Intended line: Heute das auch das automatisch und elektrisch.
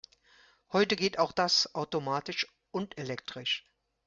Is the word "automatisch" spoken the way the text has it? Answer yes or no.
yes